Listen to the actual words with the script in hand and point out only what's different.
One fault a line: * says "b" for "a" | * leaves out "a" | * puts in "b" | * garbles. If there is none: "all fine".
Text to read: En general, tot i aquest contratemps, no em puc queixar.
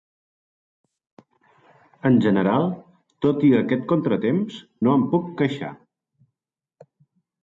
all fine